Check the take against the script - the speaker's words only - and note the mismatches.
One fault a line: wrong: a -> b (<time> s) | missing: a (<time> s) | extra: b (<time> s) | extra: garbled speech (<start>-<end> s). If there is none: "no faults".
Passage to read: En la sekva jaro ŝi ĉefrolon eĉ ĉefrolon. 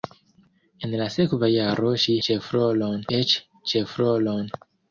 no faults